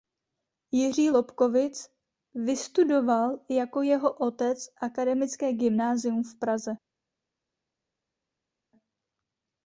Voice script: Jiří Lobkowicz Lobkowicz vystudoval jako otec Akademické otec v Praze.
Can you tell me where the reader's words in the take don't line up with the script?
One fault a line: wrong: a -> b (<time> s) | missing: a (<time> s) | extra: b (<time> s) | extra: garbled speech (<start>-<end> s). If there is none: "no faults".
missing: Lobkowicz (1.9 s)
extra: jeho (3.8 s)
wrong: otec -> gymnázium (5.5 s)